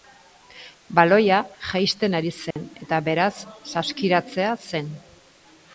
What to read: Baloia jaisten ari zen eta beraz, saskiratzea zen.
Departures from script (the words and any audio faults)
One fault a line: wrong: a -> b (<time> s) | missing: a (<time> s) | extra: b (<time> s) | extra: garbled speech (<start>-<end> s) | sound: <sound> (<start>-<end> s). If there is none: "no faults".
sound: dropout (2.5-2.6 s)